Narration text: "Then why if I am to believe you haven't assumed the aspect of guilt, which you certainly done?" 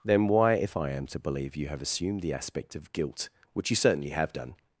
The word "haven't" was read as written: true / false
false